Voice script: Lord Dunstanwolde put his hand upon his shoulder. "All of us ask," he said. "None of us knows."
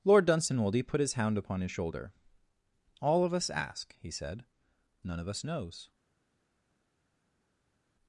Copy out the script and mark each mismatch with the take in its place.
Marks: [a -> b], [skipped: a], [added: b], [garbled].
Lord Dunstanwolde put his [hand -> hound] upon his shoulder. "All of us ask," he said. "None of us knows."